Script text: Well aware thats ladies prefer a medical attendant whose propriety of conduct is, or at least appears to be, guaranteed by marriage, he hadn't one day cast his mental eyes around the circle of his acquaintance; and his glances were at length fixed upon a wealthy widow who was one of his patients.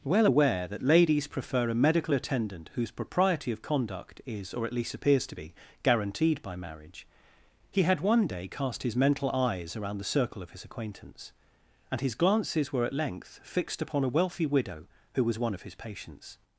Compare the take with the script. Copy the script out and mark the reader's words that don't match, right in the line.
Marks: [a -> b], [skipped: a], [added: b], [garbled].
Well aware [thats -> that] ladies prefer a medical attendant whose propriety of conduct is, or at least appears to be, guaranteed by marriage, he [hadn't -> had] one day cast his mental eyes around the circle of his acquaintance; and his glances were at length fixed upon a wealthy widow who was one of his patients.